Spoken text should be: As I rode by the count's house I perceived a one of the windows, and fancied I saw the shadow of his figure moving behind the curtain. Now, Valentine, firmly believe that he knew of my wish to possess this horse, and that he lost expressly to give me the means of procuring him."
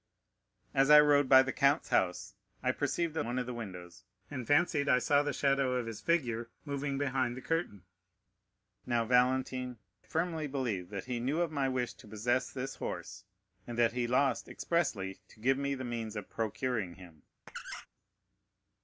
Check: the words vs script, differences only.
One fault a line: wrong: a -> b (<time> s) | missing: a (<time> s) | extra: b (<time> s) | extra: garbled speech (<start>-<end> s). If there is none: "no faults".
no faults